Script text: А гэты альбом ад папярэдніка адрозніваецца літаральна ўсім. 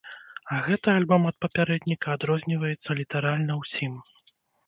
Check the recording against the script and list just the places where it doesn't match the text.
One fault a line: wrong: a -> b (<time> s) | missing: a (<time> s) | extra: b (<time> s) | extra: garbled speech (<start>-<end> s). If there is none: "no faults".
no faults